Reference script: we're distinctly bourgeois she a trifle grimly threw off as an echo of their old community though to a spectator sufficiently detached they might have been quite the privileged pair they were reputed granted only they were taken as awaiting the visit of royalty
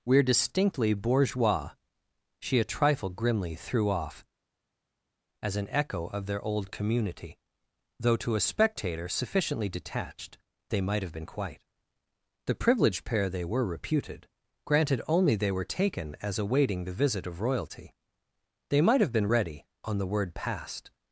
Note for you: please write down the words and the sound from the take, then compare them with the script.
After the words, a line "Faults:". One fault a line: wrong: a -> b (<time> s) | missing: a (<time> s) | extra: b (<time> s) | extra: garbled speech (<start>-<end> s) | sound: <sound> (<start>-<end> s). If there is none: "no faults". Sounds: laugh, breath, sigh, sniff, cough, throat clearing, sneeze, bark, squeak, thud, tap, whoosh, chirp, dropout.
we're distinctly bourgeois she a trifle grimly threw off as an echo of their old community though to a spectator sufficiently detached they might have been quite the privileged pair they were reputed granted only they were taken as awaiting the visit of royalty they might have been ready on the word passed
Faults:
extra: they might have been ready on the word passed (18.7 s)